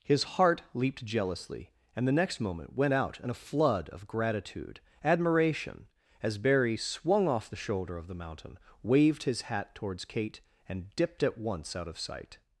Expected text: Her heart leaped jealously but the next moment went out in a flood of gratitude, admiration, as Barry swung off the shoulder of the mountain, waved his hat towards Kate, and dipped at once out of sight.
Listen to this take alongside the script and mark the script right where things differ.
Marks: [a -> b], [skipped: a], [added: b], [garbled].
[Her -> His] heart leaped jealously [but -> and] the next moment went out in a flood of gratitude, admiration, as Barry swung off the shoulder of the mountain, waved his hat towards Kate, and dipped at once out of sight.